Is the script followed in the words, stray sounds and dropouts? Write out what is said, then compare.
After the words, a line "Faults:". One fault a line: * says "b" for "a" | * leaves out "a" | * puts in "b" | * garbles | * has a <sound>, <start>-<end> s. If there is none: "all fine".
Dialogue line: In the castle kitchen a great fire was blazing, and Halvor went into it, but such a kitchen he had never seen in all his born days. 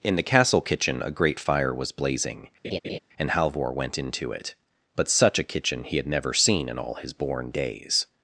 In the castle kitchen a great fire was blazing, and Halvor went into it, but such a kitchen he had never seen in all his born days.
Faults:
* has a laugh, 2.6-3.0 s